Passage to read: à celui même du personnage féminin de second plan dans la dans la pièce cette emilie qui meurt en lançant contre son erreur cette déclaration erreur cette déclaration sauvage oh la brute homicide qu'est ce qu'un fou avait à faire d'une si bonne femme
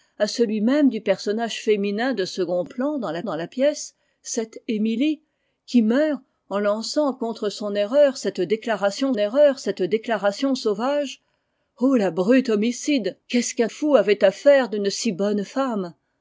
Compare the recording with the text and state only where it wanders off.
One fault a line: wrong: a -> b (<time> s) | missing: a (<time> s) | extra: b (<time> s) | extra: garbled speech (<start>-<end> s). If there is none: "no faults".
no faults